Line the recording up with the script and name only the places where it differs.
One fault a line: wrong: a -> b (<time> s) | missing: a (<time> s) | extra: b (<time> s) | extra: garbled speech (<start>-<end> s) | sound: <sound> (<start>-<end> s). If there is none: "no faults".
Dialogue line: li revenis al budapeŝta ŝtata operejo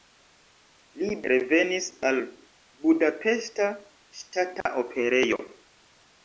sound: dropout (4.6-4.7 s)